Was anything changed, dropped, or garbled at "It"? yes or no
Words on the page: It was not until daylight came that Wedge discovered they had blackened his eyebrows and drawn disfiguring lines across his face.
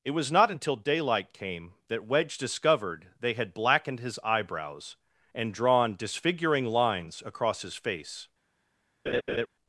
no